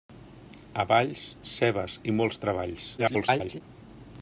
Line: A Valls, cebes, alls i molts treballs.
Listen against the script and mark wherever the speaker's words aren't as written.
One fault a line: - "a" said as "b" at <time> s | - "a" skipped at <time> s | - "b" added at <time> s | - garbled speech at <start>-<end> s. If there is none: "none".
- "alls" skipped at 2.0 s
- garbled speech at 3.0-3.6 s